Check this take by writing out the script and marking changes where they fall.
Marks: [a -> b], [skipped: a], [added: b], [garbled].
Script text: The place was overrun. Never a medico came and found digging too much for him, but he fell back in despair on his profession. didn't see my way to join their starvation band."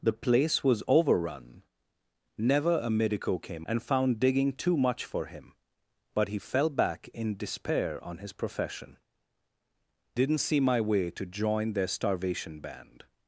The place was overrun. Never a medico came and found digging too much for him, but he fell back in despair on his profession. didn't see my way to join their starvation band."